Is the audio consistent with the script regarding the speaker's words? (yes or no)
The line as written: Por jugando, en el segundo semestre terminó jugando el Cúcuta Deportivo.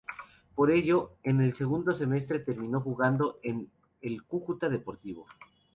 no